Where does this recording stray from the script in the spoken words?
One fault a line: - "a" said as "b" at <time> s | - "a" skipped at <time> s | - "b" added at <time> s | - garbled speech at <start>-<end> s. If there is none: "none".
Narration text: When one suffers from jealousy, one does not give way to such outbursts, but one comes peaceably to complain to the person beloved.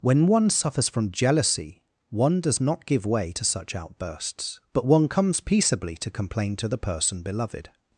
none